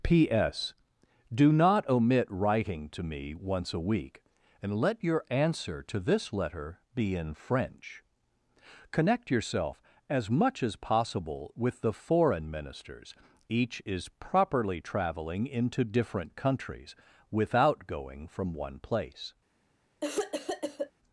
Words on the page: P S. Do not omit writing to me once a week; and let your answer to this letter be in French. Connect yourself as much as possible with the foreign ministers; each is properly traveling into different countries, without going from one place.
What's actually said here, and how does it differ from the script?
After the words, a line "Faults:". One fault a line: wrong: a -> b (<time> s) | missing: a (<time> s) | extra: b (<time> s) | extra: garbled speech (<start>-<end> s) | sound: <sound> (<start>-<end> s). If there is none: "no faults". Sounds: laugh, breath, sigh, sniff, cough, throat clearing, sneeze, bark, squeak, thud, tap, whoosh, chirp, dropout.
P S. Do not omit writing to me once a week; and let your answer to this letter be in French. Connect yourself as much as possible with the foreign ministers; each is properly traveling into different countries, without going from one place.
Faults:
sound: cough (20.0-20.9 s)